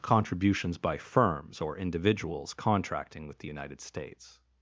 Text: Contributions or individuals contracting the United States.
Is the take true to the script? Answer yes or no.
no